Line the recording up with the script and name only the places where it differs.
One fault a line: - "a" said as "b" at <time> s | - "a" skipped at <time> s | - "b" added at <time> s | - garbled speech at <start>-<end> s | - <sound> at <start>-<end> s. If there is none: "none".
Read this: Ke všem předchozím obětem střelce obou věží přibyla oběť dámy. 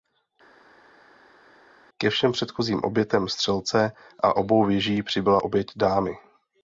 - "a" added at 4.2 s